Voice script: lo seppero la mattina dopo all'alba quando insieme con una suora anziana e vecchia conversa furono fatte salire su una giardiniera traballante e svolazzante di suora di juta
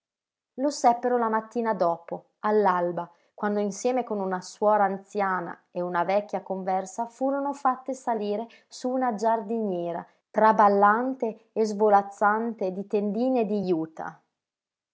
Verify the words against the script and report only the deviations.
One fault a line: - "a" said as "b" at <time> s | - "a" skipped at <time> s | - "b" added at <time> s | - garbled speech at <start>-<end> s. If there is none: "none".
- "una" added at 5.8 s
- "suora" said as "tendine" at 12.9 s